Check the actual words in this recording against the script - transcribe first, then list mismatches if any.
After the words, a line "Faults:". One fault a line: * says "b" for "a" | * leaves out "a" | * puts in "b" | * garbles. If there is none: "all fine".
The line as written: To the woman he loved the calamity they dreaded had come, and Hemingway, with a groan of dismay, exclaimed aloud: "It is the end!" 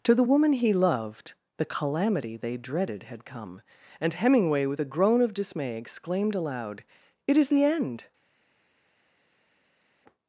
To the woman he loved the calamity they dreaded had come, and Hemingway, with a groan of dismay, exclaimed aloud: "It is the end!"
Faults:
all fine